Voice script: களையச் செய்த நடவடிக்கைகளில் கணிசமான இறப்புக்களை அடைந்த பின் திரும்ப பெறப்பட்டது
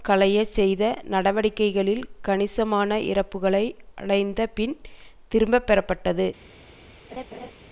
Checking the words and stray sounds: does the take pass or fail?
fail